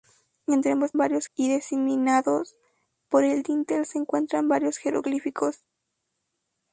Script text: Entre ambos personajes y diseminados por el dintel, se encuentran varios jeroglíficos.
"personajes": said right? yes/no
no